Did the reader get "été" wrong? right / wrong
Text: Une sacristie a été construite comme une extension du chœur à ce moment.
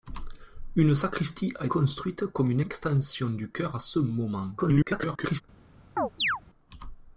wrong